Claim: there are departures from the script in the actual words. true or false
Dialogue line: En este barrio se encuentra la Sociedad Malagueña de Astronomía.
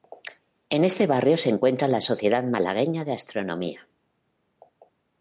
false